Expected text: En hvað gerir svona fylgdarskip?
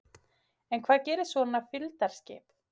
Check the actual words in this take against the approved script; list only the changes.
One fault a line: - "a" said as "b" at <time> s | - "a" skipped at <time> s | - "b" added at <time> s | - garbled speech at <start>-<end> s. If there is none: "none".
none